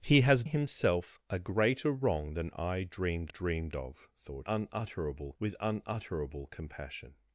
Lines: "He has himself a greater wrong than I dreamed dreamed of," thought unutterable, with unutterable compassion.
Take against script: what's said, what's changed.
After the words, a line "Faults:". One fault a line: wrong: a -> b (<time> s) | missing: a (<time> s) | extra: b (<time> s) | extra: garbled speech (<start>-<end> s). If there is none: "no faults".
"He has himself a greater wrong than I dreamed dreamed of," thought unutterable, with unutterable compassion.
Faults:
no faults